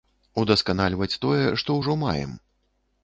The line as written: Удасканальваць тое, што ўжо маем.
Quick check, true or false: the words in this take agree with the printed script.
true